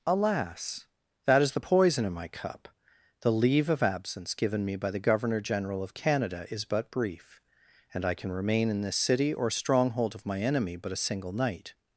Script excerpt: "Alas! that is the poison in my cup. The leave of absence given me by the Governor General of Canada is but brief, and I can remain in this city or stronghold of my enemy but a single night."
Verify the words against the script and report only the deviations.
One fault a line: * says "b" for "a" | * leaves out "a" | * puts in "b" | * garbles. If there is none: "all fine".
all fine